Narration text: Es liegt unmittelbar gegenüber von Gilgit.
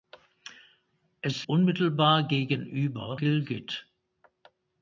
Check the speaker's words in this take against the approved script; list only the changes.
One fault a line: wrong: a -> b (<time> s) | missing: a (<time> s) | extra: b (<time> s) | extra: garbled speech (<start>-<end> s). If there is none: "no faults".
missing: liegt (1.4 s)
missing: von (3.2 s)